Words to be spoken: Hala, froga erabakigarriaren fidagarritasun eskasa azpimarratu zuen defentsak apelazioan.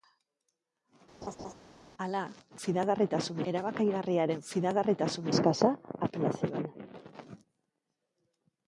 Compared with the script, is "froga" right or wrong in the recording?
wrong